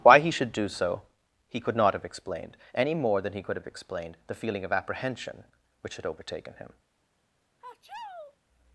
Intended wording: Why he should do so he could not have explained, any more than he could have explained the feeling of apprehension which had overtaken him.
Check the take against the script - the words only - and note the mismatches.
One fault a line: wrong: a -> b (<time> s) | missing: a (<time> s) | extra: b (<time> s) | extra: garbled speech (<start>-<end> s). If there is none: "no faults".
no faults